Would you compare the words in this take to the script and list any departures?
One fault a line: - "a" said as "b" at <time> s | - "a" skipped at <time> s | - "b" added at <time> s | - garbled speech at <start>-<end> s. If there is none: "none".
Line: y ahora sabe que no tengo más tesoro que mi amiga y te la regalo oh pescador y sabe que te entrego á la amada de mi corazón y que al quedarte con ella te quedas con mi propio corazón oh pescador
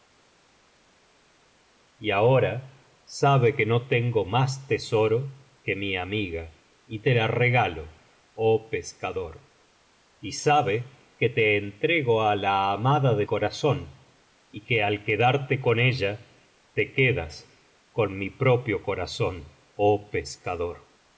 - "mi" skipped at 13.3 s